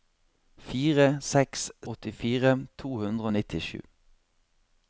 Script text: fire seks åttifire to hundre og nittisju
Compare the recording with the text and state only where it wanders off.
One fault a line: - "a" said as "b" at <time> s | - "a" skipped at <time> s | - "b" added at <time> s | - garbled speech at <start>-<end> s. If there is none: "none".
none